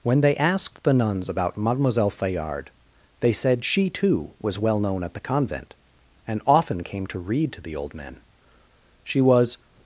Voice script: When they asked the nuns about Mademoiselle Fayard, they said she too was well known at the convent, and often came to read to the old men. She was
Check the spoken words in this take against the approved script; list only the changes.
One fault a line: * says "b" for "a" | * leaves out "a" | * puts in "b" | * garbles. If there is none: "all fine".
all fine